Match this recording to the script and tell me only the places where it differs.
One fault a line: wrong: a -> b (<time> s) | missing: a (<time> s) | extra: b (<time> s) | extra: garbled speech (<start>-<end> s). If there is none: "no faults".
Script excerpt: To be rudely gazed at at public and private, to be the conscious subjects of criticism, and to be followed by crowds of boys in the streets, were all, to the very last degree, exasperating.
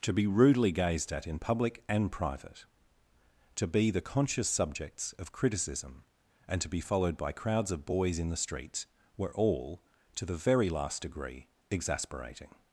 wrong: at -> in (1.3 s)